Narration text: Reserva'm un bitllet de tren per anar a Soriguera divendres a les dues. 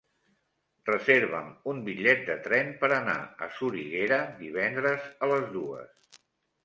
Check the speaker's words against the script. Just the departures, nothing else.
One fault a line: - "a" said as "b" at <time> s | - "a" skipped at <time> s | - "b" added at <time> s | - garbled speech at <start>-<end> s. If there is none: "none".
none